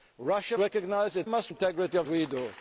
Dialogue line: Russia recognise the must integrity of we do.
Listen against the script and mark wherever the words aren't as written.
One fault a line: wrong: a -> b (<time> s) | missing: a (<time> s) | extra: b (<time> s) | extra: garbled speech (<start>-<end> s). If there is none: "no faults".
no faults